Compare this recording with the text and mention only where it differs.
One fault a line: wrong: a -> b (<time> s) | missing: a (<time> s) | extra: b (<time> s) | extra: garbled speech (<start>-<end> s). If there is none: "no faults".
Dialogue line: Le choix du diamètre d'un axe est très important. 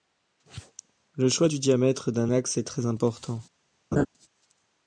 no faults